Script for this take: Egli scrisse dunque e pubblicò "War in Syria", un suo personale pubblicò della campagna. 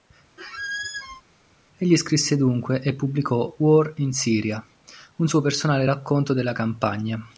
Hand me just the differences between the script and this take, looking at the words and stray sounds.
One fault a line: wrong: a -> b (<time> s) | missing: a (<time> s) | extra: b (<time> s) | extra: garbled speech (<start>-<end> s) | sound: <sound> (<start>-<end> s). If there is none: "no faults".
sound: squeak (0.4-1.2 s)
wrong: pubblicò -> racconto (5.8 s)